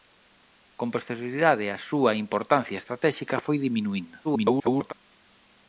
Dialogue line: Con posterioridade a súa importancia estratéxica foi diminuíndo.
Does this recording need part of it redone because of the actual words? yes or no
yes